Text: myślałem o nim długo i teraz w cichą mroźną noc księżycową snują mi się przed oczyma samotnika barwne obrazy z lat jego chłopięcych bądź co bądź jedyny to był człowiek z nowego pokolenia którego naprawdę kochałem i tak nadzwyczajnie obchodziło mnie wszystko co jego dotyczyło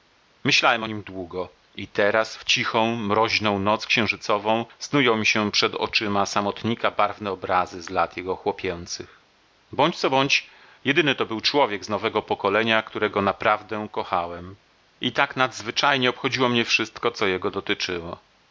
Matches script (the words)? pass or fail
pass